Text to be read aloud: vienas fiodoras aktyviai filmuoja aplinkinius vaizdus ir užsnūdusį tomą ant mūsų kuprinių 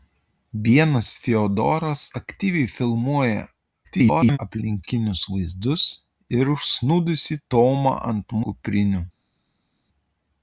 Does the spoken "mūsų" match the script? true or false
false